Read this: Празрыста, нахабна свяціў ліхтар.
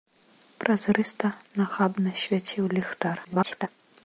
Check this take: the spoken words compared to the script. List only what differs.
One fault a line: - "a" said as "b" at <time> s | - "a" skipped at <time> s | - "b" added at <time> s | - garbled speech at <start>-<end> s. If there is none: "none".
- garbled speech at 3.2-3.7 s